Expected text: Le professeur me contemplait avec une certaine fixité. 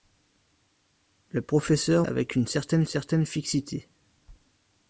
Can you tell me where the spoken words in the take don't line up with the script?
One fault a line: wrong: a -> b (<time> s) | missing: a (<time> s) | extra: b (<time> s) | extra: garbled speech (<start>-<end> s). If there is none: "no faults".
missing: me contemplait (2.1 s)
extra: certaine (2.9 s)